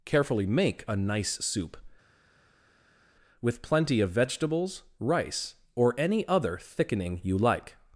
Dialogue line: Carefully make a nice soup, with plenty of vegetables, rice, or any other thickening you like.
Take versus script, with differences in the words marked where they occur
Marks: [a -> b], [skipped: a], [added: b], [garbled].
Carefully make a nice soup, with plenty of vegetables, rice, or any other thickening you like.